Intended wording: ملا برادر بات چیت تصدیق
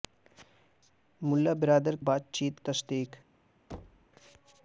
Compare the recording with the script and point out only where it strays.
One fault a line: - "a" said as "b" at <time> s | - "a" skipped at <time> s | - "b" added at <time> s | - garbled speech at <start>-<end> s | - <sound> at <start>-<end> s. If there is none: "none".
- thud at 3.7-4.1 s